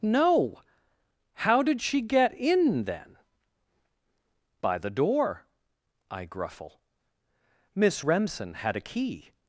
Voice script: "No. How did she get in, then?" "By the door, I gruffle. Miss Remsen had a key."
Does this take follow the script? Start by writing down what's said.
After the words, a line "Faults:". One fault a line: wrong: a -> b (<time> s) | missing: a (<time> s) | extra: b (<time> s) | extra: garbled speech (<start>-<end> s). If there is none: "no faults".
"No. How did she get in, then?" "By the door, I gruffle. Miss Remsen had a key."
Faults:
no faults